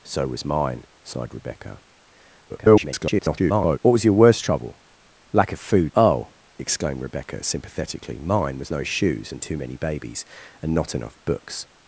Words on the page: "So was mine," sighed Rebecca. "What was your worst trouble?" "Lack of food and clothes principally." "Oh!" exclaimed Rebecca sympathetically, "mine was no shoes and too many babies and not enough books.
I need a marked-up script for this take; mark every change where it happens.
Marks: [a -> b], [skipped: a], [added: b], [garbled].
"So was mine," sighed Rebecca. [garbled] "What was your worst trouble?" "Lack of food [skipped: and clothes principally."] "Oh!" exclaimed Rebecca sympathetically, "mine was no shoes and too many babies and not enough books.